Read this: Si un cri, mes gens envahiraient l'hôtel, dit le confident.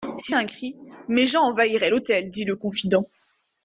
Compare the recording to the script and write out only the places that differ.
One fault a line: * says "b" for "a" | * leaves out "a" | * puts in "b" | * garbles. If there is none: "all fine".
all fine